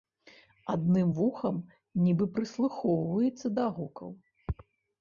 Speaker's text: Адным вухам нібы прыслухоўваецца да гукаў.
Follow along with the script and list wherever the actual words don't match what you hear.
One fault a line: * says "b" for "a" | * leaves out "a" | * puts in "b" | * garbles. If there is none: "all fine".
all fine